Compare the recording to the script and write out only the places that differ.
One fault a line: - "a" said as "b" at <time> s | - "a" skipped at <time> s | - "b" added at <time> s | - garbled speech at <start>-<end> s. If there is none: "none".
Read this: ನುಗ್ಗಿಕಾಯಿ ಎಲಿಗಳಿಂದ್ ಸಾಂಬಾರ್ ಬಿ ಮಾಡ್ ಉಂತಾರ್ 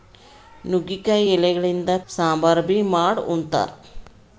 none